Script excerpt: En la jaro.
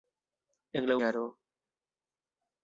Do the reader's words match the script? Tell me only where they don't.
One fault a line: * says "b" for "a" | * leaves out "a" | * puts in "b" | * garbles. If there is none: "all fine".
all fine